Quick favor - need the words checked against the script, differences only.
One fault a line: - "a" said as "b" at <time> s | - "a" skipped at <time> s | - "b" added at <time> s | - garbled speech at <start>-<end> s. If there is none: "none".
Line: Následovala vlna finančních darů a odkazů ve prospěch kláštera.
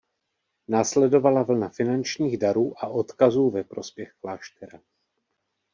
none